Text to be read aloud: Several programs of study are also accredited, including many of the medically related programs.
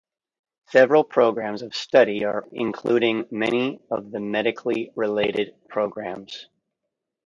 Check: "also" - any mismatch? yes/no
yes